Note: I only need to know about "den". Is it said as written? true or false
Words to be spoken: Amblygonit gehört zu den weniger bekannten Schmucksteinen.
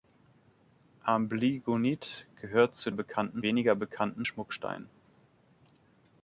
false